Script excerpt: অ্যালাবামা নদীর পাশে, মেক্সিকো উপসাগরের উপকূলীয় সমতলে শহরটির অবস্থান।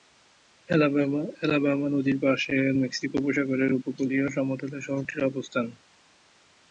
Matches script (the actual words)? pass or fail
pass